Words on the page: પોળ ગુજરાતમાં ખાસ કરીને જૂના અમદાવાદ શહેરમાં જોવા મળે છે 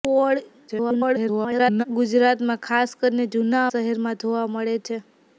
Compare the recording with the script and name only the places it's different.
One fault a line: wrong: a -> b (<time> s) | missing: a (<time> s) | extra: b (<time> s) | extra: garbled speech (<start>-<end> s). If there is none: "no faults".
extra: garbled speech (0.7-1.8 s)
missing: અમદાવાદ (3.6 s)